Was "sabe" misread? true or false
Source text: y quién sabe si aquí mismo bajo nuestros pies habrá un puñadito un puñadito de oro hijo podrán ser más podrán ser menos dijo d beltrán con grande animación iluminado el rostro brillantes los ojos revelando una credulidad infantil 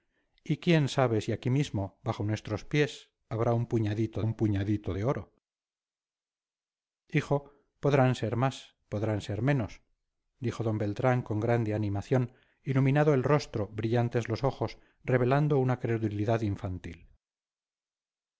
false